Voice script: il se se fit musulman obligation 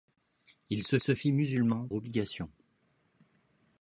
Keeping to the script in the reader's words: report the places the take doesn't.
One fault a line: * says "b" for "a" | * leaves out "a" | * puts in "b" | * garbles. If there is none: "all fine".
all fine